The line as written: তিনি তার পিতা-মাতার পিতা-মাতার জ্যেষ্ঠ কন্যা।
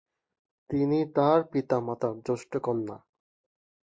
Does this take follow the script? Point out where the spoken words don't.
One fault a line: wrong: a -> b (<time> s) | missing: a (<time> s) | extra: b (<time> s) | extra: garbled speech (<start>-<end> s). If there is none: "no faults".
missing: পিতা-মাতার (2.1 s)